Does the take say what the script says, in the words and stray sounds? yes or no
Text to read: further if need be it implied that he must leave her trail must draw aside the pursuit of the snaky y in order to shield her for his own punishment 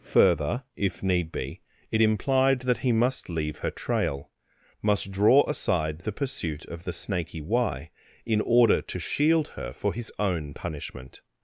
yes